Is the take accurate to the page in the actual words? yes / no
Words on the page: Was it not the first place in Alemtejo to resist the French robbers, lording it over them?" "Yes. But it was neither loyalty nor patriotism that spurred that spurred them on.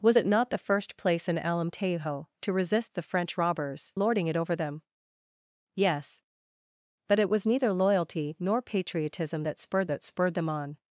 yes